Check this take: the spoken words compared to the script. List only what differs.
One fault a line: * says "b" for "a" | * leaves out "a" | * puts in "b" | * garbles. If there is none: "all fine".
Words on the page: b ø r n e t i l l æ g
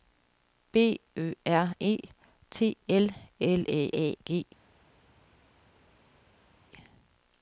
* leaves out "n"
* says "l" for "i"
* says "æ" for "l"